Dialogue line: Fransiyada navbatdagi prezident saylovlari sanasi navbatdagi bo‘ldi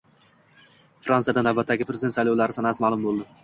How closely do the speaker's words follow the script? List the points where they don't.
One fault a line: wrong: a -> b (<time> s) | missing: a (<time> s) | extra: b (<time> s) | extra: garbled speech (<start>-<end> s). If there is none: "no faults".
wrong: navbatdagi -> ma'lum (2.9 s)